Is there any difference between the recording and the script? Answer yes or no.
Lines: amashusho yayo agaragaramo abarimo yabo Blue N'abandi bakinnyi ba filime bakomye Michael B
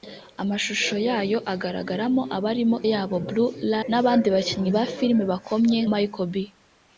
no